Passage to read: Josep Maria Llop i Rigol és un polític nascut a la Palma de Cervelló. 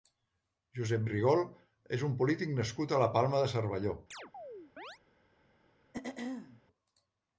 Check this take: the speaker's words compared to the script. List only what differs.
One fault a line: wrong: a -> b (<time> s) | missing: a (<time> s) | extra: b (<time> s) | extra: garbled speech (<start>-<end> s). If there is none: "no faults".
missing: Maria Llop (1.0 s)